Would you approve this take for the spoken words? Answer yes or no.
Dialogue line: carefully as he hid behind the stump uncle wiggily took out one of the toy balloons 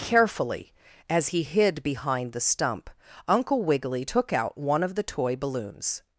yes